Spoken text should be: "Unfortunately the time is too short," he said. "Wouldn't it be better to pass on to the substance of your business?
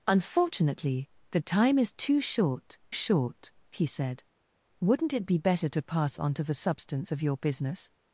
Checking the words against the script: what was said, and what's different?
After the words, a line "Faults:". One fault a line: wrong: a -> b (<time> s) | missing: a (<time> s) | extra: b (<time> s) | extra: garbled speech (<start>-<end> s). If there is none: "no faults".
"Unfortunately the time is too short short," he said. "Wouldn't it be better to pass on to the substance of your business?
Faults:
extra: short (2.9 s)